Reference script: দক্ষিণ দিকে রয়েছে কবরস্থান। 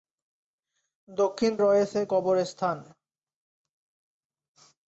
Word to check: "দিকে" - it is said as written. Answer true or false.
false